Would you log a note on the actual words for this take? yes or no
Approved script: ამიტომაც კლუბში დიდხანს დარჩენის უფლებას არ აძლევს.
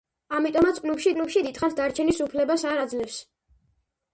yes